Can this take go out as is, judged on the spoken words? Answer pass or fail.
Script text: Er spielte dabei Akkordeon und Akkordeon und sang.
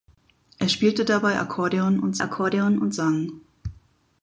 pass